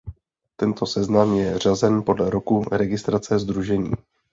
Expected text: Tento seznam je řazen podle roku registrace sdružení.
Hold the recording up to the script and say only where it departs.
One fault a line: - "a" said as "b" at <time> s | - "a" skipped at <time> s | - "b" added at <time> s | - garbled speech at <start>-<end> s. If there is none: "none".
none